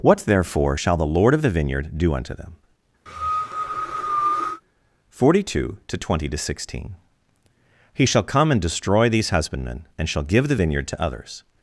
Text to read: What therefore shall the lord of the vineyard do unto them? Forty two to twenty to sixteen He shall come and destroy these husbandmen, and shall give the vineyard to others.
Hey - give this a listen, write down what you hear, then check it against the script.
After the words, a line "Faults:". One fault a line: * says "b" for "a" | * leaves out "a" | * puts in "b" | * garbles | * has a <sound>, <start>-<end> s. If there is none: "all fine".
What therefore shall the lord of the vineyard do unto them? Forty two to twenty to sixteen He shall come and destroy these husbandmen, and shall give the vineyard to others.
Faults:
* has a cough, 3.1-4.6 s